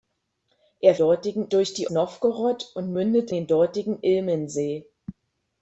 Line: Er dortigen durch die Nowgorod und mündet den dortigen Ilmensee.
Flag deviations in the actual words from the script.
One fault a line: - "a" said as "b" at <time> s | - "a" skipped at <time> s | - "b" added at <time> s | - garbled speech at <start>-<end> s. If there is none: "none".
none